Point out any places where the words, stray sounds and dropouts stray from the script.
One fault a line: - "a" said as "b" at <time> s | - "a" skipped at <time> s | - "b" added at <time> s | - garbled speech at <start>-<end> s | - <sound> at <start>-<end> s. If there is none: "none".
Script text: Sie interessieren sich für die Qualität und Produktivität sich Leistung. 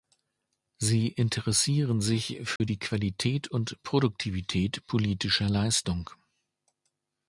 - dropout at 2.6-2.6 s
- "sich" said as "politischer" at 4.8 s